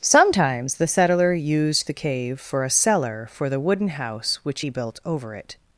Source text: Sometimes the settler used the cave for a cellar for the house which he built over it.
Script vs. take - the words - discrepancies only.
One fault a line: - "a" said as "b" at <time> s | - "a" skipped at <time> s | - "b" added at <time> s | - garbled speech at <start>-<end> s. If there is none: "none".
- "wooden" added at 3.6 s